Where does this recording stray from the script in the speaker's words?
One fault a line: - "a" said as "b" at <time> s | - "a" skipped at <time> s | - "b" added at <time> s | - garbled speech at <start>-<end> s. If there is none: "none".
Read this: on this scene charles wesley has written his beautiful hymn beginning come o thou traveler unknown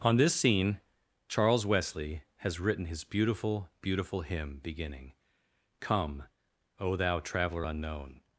- "beautiful" added at 3.8 s